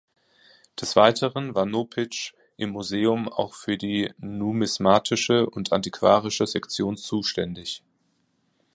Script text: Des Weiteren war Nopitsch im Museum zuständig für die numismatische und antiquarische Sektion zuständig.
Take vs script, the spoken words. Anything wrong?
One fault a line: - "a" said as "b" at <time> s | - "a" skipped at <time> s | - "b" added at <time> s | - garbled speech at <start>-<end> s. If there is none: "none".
- "zuständig" said as "auch" at 3.3 s